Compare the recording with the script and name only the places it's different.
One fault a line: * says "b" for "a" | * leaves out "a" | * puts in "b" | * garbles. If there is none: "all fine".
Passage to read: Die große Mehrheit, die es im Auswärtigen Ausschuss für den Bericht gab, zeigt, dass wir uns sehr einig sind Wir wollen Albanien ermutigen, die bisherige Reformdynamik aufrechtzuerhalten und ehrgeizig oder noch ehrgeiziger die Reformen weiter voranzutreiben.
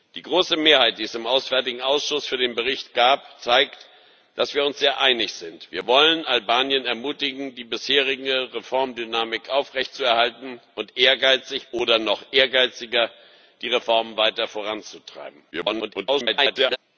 * garbles